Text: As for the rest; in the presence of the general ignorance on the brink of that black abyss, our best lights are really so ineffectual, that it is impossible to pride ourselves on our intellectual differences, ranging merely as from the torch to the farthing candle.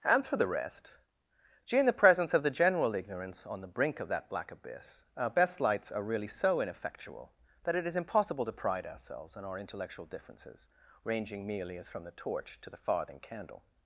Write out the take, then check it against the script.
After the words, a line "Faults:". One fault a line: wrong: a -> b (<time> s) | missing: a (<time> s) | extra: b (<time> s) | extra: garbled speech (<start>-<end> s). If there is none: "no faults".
As for the rest; gee in the presence of the general ignorance on the brink of that black abyss, our best lights are really so ineffectual, that it is impossible to pride ourselves on our intellectual differences, ranging merely as from the torch to the farthing candle.
Faults:
extra: gee (1.7 s)